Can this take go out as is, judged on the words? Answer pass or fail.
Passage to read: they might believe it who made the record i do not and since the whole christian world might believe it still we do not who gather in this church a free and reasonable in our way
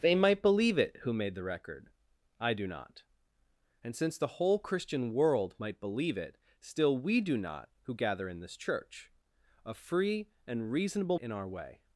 pass